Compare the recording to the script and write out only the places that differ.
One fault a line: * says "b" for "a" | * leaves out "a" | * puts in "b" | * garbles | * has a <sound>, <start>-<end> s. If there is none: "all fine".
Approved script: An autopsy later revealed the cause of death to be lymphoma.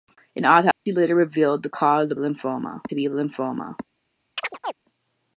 * has a dropout, 0.7-0.9 s
* says "lymphoma" for "death"
* has a chirp, 4.4-4.7 s